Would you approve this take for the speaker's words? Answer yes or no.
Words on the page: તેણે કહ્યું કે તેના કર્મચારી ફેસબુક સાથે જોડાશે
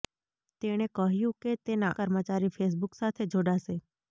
yes